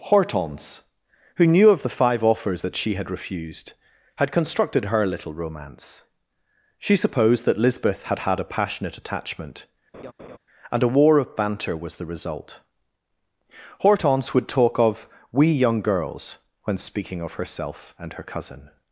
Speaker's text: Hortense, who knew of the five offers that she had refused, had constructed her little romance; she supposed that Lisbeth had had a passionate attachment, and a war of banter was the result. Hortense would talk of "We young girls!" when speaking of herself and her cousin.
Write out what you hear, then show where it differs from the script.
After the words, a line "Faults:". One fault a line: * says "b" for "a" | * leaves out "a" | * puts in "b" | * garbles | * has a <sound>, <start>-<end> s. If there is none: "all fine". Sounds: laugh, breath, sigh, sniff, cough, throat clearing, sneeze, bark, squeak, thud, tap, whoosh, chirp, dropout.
Hortense, who knew of the five offers that she had refused, had constructed her little romance; she supposed that Lisbeth had had a passionate attachment, and a war of banter was the result. Hortense would talk of "We young girls!" when speaking of herself and her cousin.
Faults:
* has a laugh, 9.9-10.4 s